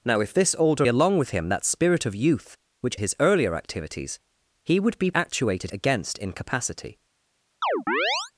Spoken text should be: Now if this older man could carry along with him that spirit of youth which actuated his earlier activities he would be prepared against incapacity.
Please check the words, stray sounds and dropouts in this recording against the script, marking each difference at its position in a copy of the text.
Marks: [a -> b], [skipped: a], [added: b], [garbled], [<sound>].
Now if this older [skipped: man could carry] along with him that spirit of youth which [skipped: actuated] his earlier activities he would be [prepared -> actuated] against incapacity. [chirp]